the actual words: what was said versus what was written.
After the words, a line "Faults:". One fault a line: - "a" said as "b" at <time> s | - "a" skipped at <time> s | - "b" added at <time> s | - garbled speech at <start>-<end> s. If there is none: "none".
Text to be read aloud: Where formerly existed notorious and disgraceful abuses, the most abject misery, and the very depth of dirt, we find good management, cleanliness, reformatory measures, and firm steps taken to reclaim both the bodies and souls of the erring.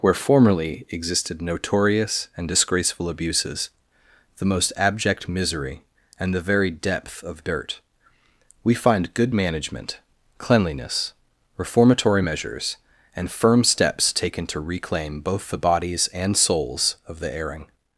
Where formerly existed notorious and disgraceful abuses, the most abject misery, and the very depth of dirt, we find good management, cleanliness, reformatory measures, and firm steps taken to reclaim both the bodies and souls of the erring.
Faults:
none